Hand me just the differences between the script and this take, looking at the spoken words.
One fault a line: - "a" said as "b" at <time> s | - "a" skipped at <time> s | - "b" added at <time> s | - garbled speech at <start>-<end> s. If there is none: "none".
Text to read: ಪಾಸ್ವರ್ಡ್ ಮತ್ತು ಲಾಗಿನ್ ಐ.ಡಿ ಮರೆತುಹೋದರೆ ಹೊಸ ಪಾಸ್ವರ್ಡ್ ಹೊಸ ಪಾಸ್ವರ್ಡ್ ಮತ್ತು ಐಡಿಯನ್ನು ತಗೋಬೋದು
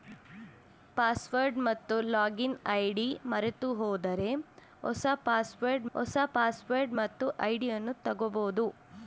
none